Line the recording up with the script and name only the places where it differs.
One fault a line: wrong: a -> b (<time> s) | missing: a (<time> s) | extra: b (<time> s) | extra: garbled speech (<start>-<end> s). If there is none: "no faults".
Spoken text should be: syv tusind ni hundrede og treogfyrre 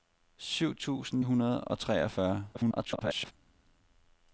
missing: ni (1.2 s)
extra: garbled speech (2.5-3.3 s)